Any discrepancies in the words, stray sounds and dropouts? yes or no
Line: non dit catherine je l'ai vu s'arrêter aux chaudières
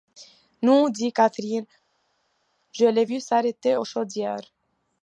no